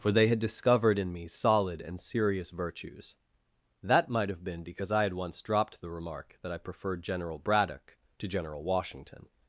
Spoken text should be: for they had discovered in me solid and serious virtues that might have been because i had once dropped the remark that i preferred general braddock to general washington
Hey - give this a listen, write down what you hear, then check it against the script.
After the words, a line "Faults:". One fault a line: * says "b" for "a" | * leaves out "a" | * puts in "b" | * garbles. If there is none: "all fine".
for they had discovered in me solid and serious virtues that might have been because i had once dropped the remark that i preferred general braddock to general washington
Faults:
all fine